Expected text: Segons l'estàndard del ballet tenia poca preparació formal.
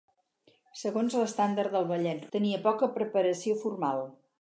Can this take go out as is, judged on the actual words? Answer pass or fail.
pass